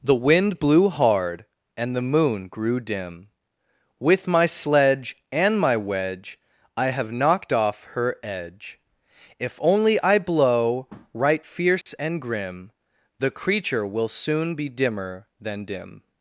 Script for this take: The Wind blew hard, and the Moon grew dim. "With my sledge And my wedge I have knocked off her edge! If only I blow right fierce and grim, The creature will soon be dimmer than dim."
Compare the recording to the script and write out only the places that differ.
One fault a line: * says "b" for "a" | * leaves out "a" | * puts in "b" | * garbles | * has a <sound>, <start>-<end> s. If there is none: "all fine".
* has a dropout, 11.8-11.9 s